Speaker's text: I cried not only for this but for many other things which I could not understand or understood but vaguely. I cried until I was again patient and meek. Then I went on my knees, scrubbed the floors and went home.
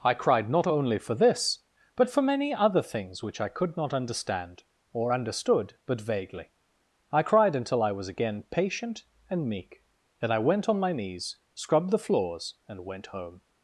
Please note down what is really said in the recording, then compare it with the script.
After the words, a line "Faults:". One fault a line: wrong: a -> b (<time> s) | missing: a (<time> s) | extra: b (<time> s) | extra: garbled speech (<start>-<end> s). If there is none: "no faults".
I cried not only for this but for many other things which I could not understand or understood but vaguely. I cried until I was again patient and meek. Then I went on my knees, scrubbed the floors and went home.
Faults:
no faults